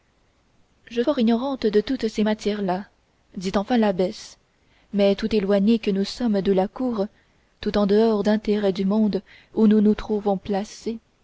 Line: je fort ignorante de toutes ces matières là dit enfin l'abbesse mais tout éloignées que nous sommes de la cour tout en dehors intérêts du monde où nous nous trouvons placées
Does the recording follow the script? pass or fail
pass